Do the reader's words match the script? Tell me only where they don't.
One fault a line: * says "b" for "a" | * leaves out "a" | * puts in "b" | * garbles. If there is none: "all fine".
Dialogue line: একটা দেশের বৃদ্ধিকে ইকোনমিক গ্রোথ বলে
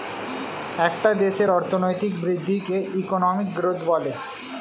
* puts in "অর্থনৈতিক"